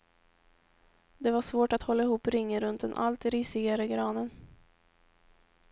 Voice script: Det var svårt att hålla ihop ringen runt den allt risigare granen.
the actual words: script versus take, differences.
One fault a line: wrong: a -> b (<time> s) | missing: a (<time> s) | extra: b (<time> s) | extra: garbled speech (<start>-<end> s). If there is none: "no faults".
no faults